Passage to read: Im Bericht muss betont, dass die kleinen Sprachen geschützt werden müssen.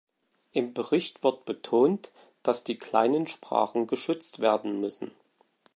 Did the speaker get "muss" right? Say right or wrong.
wrong